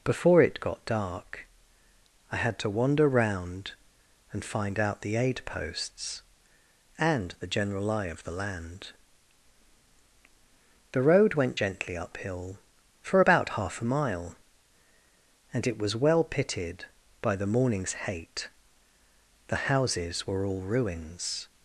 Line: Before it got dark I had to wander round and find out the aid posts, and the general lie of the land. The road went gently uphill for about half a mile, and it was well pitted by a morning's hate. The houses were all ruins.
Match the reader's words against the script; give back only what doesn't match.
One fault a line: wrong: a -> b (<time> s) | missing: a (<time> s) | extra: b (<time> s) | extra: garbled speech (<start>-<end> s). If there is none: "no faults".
wrong: a -> the (17.3 s)